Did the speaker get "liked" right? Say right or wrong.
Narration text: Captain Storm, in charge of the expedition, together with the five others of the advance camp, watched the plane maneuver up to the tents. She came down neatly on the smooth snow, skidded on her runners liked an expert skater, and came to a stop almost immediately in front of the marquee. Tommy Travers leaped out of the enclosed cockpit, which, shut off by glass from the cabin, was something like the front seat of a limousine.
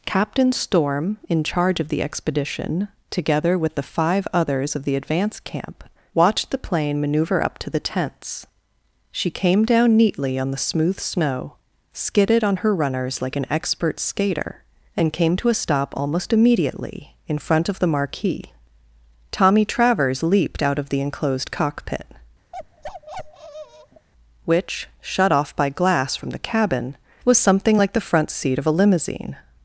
wrong